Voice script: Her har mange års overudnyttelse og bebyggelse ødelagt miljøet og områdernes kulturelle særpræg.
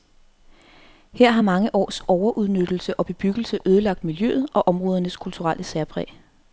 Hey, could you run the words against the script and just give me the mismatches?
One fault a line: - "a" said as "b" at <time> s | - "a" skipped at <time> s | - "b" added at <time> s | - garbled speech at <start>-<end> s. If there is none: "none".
none